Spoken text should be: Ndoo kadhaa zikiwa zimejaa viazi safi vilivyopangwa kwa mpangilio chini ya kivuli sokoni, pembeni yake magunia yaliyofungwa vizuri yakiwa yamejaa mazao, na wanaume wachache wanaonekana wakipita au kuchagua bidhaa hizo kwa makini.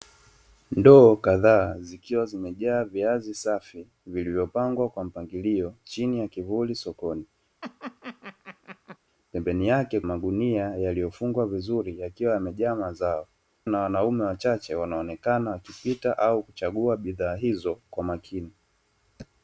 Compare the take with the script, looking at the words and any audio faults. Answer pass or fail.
fail